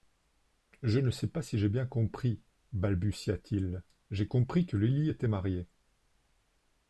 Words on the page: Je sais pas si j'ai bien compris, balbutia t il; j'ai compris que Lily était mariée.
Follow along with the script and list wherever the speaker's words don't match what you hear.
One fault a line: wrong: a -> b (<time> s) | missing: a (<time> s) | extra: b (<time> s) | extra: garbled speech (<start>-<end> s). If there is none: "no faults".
extra: ne (1.0 s)